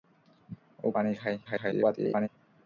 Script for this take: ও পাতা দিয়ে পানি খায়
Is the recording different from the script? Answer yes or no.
yes